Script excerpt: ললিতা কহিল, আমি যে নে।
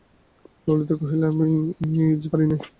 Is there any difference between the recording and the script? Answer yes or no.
yes